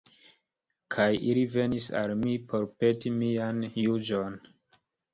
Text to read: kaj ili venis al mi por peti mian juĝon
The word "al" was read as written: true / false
true